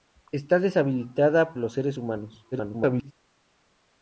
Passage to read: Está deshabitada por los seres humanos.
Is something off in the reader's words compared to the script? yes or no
yes